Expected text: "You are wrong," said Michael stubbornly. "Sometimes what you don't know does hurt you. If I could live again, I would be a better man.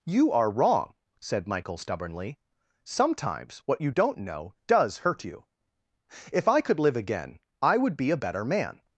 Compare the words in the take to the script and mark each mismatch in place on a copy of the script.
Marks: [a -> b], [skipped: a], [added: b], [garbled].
"You are wrong," said Michael stubbornly. "Sometimes what you don't know does hurt you. If I could live again, I would be a better man.